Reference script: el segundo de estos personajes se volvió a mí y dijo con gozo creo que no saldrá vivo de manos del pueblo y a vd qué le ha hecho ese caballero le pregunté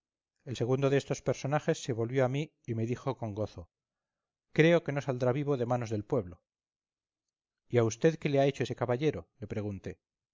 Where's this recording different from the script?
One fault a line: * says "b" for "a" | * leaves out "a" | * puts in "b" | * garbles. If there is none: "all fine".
* puts in "me"